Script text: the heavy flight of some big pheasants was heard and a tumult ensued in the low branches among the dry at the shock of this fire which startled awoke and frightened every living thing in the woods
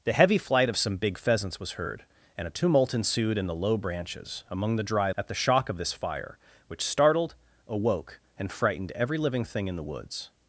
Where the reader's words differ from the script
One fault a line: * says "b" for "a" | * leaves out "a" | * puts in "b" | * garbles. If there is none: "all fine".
all fine